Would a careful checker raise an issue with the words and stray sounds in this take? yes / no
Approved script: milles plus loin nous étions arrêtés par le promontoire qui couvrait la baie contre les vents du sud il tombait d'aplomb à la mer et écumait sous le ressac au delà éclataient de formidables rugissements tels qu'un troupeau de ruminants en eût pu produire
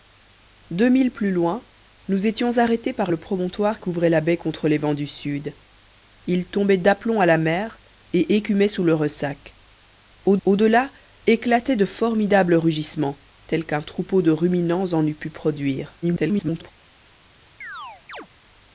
yes